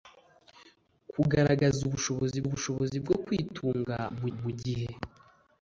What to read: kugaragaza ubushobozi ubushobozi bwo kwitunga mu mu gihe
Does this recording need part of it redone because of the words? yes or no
no